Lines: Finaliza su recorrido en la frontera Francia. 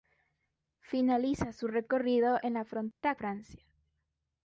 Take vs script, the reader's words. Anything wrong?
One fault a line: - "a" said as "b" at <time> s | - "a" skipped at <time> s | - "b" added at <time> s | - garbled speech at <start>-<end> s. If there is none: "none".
none